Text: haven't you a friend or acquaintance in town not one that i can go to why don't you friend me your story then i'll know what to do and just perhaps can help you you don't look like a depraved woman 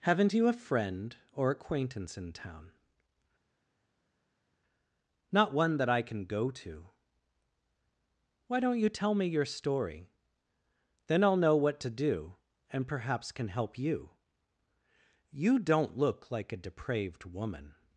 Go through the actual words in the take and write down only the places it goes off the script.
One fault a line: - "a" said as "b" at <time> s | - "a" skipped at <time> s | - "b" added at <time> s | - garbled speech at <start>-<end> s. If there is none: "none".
- "friend" said as "tell" at 8.9 s
- "just" skipped at 12.9 s